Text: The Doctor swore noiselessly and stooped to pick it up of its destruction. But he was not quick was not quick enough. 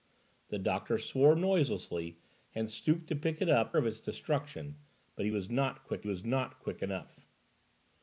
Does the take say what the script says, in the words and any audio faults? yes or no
yes